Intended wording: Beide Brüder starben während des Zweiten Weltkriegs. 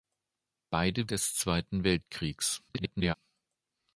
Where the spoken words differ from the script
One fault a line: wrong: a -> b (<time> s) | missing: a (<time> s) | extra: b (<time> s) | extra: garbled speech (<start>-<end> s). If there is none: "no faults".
missing: Brüder starben während (1.1 s)
extra: garbled speech (2.7-3.1 s)